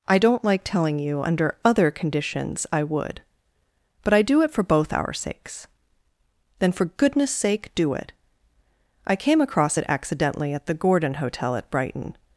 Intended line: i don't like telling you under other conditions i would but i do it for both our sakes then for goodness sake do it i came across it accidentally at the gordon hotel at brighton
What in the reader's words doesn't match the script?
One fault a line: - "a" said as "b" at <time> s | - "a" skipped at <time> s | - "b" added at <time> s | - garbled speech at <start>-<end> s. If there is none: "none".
none